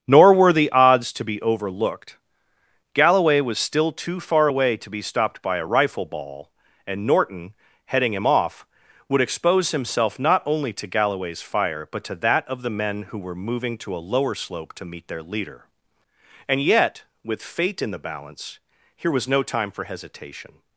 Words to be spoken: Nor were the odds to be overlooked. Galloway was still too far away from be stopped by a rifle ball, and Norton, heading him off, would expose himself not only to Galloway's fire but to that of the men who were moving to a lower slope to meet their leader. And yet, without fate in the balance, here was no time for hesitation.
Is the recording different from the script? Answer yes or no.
yes